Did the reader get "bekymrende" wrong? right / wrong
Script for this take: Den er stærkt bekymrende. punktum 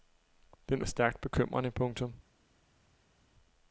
right